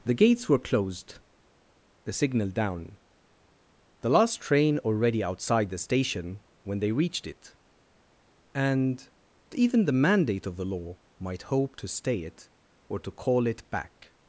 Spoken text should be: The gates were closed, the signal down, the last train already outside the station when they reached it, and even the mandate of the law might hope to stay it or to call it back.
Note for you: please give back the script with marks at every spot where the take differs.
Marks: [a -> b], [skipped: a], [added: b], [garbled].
The gates were closed, the signal down, the last train already outside the station when they reached it, and even the mandate of the law might hope to stay it or to call it back.